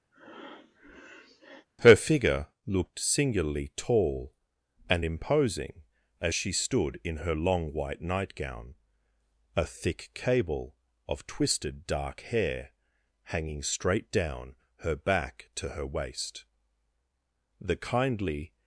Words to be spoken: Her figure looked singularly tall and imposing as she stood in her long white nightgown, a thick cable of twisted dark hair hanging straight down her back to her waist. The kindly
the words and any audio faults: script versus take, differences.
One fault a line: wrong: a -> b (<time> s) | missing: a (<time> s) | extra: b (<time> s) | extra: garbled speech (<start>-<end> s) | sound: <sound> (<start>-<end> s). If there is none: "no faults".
sound: breath (0.1-1.7 s)